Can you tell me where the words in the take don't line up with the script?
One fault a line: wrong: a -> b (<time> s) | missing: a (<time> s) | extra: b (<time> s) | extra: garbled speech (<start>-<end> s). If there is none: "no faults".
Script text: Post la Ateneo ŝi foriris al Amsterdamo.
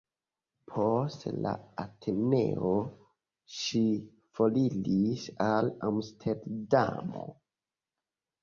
no faults